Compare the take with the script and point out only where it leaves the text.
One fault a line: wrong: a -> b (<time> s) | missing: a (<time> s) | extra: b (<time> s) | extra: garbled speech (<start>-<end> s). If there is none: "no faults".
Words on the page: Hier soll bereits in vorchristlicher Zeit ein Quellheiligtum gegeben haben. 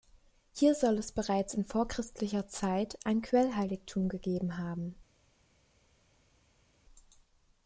extra: es (1.0 s)